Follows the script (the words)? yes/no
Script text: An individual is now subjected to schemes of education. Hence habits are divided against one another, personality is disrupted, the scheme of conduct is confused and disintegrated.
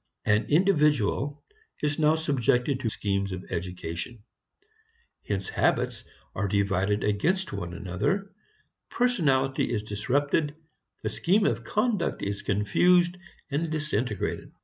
yes